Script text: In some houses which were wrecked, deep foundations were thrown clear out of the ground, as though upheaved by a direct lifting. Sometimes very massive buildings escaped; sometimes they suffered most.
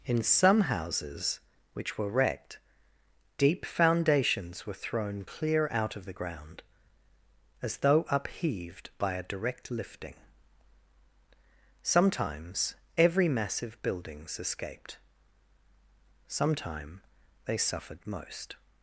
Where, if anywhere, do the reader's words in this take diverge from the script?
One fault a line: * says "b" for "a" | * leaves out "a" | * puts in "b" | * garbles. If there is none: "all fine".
* says "every" for "very"
* says "sometime" for "sometimes"